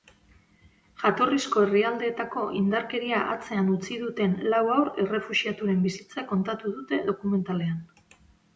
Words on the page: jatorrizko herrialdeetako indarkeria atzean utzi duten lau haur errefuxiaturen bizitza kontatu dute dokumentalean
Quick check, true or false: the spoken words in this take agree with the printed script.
true